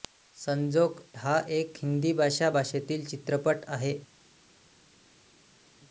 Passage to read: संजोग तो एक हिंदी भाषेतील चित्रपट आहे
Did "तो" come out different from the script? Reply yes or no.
yes